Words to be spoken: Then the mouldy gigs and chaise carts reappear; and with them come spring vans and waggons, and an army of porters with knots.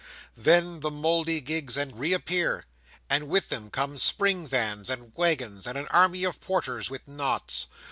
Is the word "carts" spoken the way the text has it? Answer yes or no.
no